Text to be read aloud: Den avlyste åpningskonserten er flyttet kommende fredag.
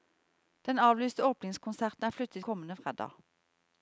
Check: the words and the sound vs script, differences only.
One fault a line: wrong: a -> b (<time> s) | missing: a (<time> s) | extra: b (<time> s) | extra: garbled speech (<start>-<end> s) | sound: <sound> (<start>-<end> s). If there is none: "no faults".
no faults